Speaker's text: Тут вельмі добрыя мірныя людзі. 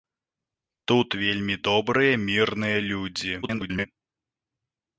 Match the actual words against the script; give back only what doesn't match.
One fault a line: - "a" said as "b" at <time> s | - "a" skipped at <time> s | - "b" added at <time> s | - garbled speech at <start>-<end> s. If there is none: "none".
- garbled speech at 3.4-3.9 s